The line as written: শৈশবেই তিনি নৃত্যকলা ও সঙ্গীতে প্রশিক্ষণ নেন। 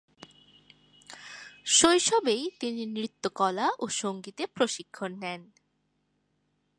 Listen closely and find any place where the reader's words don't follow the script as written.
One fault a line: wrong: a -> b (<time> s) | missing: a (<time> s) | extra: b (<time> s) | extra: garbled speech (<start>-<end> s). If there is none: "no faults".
no faults